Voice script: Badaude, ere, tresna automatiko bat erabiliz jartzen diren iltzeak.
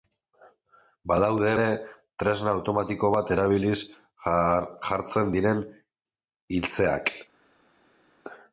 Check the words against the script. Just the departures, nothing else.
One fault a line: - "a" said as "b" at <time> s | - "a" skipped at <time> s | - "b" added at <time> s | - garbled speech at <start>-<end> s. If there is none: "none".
none